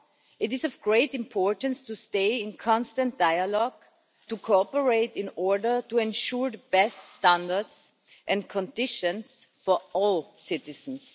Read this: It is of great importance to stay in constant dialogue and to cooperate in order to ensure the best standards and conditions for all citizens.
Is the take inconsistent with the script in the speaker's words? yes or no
yes